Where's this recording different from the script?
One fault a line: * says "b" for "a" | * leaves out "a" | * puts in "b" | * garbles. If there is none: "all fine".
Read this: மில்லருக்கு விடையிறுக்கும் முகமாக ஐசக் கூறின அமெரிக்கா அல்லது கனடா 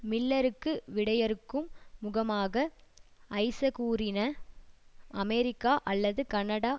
all fine